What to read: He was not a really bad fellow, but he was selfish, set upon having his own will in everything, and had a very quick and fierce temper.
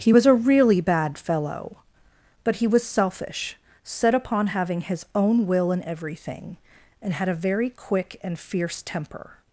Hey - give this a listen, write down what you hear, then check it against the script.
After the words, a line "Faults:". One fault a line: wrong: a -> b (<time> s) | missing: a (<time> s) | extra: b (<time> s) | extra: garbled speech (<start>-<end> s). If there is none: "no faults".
He was a really bad fellow, but he was selfish, set upon having his own will in everything, and had a very quick and fierce temper.
Faults:
missing: not (0.2 s)